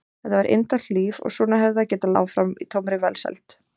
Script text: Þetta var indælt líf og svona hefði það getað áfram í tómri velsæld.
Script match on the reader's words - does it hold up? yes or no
yes